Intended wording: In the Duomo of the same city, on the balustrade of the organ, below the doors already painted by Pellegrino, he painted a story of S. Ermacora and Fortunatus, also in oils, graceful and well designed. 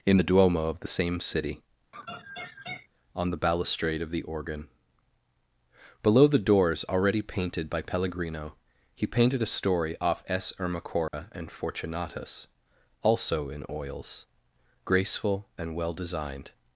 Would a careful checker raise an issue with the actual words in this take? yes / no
yes